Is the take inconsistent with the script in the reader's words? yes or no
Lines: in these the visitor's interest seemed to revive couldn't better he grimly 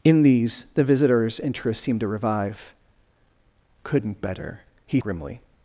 no